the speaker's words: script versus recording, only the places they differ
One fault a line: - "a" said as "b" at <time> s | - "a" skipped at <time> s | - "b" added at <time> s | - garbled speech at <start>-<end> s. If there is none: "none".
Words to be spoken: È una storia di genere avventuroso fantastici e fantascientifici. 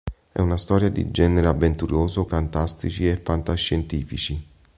none